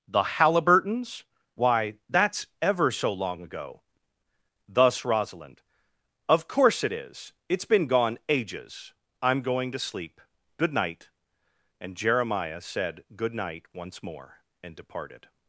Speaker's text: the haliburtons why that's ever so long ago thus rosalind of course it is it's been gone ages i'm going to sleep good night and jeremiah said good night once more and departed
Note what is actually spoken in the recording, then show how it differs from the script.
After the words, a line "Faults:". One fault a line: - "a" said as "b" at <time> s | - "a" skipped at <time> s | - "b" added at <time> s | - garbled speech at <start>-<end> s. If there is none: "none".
the haliburtons why that's ever so long ago thus rosalind of course it is it's been gone ages i'm going to sleep good night and jeremiah said good night once more and departed
Faults:
none